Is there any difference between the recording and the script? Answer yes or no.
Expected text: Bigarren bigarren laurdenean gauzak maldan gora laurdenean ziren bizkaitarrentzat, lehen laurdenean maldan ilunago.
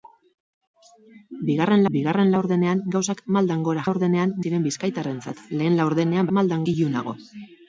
no